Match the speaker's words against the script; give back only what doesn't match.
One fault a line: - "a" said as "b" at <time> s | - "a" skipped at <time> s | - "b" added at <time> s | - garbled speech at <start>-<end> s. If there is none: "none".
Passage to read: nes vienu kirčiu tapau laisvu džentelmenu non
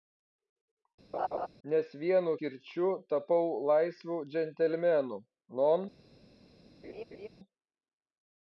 none